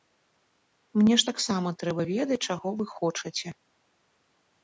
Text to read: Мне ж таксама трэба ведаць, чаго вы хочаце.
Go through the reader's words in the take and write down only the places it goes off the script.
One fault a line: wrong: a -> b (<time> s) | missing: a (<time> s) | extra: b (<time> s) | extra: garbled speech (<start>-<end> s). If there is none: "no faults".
no faults